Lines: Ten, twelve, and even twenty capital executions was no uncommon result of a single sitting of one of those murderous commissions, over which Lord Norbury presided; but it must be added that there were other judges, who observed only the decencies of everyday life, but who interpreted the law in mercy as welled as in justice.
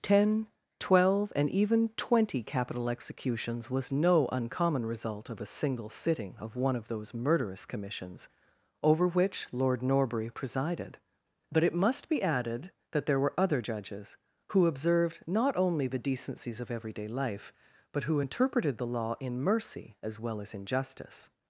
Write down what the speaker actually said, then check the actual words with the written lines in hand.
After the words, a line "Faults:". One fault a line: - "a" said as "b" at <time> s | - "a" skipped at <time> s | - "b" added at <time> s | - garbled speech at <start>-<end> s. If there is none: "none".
Ten, twelve, and even twenty capital executions was no uncommon result of a single sitting of one of those murderous commissions, over which Lord Norbury presided; but it must be added that there were other judges, who observed not only the decencies of everyday life, but who interpreted the law in mercy as well as in justice.
Faults:
- "not" added at 15.3 s
- "welled" said as "well" at 20.2 s